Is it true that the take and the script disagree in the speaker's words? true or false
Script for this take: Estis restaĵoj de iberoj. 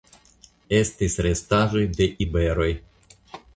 false